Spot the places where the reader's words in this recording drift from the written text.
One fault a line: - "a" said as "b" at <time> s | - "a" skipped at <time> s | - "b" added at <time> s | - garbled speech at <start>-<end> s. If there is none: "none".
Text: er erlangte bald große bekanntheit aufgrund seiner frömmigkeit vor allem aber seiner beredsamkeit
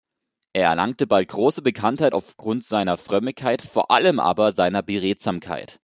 none